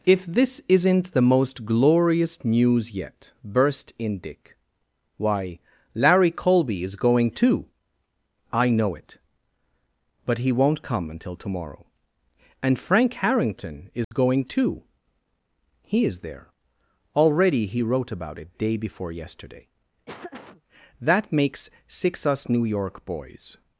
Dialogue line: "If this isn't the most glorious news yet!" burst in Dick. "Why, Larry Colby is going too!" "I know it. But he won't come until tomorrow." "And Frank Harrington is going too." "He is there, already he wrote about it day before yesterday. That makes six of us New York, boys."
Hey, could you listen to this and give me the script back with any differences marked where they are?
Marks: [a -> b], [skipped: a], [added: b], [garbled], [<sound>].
"If this isn't the most glorious news yet!" burst in Dick. "Why, Larry Colby is going too!" "I know it. But he won't come until tomorrow." "And Frank Harrington is [dropout] going too." "He is there, already he wrote about it day before yesterday. [laugh] That makes six [skipped: of] us New York, boys."